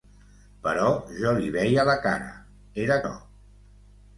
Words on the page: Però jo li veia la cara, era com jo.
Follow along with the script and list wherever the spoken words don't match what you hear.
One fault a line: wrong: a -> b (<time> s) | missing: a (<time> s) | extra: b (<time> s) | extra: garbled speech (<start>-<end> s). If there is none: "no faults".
missing: com (3.0 s)